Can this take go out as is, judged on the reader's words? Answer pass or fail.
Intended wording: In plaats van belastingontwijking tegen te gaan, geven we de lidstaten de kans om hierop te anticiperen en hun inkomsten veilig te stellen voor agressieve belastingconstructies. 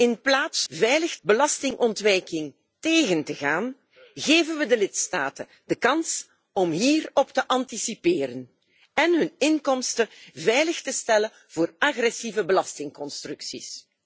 fail